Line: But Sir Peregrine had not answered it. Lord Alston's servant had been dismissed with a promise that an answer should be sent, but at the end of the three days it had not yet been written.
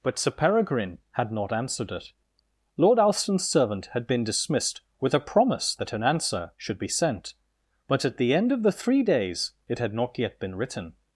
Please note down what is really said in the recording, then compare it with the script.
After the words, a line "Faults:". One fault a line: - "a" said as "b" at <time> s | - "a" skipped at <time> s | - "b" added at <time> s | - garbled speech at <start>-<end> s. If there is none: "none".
But Sir Peregrine had not answered it. Lord Alston's servant had been dismissed with a promise that an answer should be sent, but at the end of the three days it had not yet been written.
Faults:
none